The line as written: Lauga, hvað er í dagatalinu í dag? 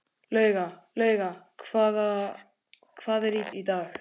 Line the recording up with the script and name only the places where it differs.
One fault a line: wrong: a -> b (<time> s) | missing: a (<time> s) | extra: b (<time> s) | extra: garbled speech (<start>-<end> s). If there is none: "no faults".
extra: lauga (1.0 s)
missing: dagatalinu (3.5 s)